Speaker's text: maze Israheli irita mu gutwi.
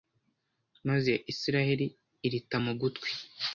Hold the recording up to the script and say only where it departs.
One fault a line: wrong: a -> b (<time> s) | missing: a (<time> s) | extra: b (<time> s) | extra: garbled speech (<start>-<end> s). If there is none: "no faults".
no faults